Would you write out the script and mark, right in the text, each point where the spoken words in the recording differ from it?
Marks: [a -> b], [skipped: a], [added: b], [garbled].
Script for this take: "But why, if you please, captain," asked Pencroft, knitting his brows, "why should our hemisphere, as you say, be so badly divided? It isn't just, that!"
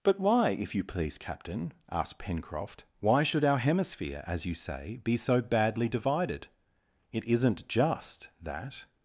"But why, if you please, captain," asked Pencroft, [skipped: knitting his brows,] "why should our hemisphere, as you say, be so badly divided? It isn't just, that!"